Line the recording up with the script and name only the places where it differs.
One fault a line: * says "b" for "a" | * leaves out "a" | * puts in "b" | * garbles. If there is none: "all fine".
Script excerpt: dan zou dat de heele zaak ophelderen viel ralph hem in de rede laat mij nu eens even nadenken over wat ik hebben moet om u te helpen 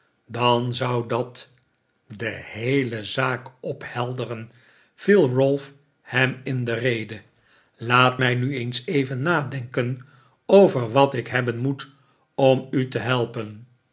all fine